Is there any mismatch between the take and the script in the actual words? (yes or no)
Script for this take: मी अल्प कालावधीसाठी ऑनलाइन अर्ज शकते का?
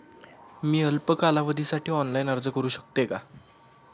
yes